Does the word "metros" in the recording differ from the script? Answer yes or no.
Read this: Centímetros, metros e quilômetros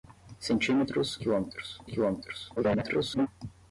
yes